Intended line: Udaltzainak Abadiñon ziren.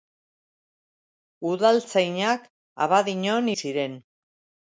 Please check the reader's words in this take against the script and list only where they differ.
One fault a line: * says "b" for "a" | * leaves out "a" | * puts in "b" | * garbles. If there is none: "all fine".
all fine